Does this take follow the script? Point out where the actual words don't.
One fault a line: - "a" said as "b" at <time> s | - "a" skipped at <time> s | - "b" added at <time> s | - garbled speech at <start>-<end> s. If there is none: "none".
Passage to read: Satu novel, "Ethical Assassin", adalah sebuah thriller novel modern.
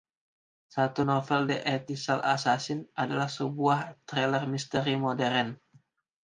- "The" added at 1.5 s
- "novel" said as "misteri" at 4.4 s